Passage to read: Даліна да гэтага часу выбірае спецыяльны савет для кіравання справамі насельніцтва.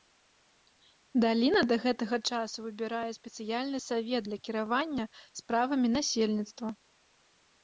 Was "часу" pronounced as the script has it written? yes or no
yes